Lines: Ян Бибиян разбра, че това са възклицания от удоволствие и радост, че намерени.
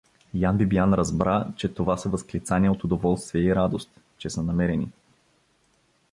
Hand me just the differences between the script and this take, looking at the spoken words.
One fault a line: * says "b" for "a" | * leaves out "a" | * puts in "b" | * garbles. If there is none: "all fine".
* puts in "са"